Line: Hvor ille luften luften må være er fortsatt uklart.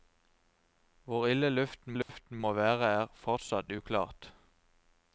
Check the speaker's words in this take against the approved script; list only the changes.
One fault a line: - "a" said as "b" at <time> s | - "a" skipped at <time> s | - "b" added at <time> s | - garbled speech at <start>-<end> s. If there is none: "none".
none